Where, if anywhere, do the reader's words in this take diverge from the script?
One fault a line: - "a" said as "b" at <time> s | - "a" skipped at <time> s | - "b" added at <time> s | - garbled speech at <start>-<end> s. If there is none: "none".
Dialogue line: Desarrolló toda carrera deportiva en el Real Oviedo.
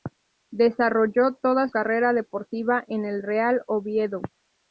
none